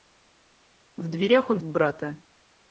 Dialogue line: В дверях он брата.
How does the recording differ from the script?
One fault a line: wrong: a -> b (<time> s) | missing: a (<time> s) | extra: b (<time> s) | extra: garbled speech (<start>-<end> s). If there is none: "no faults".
no faults